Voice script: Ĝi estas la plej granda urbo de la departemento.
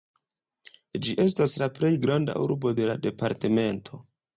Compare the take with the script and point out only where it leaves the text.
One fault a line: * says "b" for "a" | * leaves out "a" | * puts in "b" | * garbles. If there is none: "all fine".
all fine